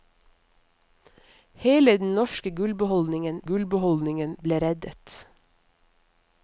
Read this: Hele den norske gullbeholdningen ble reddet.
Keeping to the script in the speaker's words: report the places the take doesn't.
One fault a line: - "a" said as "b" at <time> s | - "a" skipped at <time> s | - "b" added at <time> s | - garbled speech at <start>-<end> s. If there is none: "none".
- "gullbeholdningen" added at 3.5 s